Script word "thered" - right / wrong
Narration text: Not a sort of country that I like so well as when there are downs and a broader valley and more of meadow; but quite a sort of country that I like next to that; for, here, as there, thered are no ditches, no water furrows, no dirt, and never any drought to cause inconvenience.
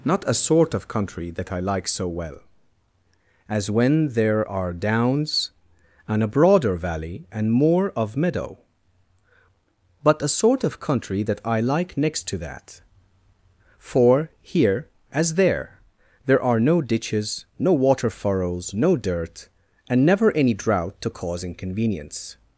wrong